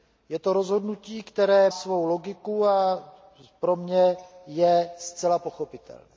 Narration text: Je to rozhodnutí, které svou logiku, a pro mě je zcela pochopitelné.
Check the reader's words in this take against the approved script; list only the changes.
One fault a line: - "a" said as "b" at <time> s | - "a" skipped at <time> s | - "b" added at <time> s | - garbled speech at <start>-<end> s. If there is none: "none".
none